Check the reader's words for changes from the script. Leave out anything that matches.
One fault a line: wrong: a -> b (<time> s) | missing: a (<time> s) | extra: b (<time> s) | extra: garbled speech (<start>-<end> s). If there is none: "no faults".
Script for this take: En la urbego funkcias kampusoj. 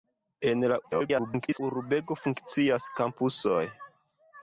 extra: garbled speech (0.8-1.6 s)